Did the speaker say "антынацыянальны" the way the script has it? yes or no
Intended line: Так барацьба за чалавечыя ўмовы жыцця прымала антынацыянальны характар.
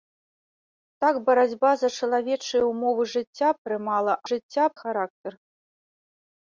no